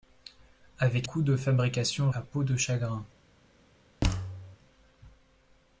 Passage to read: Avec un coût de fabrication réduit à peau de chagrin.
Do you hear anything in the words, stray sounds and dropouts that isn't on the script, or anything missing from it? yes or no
yes